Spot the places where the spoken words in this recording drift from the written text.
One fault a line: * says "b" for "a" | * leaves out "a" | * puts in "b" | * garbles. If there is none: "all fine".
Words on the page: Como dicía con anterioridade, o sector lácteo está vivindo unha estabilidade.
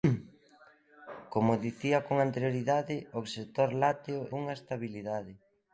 * leaves out "está vivindo"